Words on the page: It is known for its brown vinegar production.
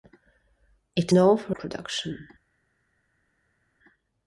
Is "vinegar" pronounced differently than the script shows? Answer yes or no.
yes